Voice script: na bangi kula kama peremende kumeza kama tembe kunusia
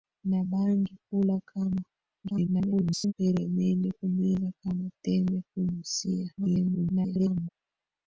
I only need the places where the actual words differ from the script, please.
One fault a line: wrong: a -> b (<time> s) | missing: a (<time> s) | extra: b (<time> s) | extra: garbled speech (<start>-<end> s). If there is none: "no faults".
extra: garbled speech (2.2-3.1 s)
extra: garbled speech (6.4-7.5 s)